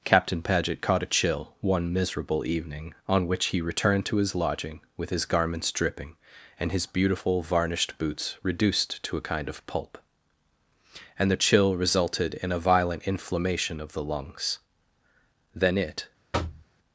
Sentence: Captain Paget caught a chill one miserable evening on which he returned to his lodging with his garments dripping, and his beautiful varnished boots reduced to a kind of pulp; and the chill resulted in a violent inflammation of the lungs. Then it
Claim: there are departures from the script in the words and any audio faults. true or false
true